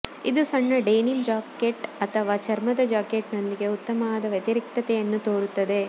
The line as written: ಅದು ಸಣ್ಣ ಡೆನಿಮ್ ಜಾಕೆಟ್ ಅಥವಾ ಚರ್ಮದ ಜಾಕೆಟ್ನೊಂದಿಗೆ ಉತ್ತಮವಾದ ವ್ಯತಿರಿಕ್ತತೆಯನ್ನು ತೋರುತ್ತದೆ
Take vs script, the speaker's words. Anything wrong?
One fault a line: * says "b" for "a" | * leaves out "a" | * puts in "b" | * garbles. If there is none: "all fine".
* says "ಇದು" for "ಅದು"